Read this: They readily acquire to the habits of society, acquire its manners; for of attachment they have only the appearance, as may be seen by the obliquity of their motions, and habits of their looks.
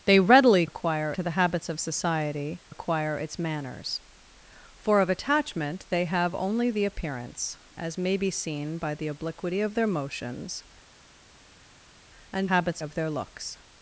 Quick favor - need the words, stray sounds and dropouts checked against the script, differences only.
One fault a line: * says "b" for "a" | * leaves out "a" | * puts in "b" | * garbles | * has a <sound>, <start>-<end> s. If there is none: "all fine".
all fine